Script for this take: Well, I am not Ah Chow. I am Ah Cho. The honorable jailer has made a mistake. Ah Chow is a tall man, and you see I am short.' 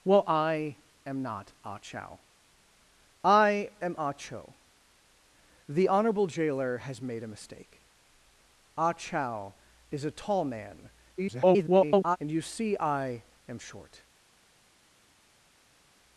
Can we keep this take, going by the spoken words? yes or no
no